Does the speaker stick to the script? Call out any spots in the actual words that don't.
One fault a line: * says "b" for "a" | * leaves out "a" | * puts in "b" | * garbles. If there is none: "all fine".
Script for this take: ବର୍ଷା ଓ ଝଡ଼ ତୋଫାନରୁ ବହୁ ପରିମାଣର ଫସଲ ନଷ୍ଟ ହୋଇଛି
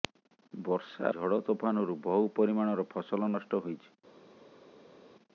* leaves out "ଓ"